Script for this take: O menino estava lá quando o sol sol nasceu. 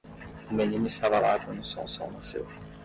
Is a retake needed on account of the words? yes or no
no